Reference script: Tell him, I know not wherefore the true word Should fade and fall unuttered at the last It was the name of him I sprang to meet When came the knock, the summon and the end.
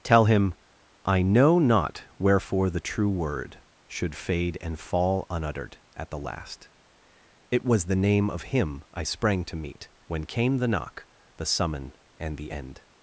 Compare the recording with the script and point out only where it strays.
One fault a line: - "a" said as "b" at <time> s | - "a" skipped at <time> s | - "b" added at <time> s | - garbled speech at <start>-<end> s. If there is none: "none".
none